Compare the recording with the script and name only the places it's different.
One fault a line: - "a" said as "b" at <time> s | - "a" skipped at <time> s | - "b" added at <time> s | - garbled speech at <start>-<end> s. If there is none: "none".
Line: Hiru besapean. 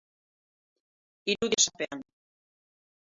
none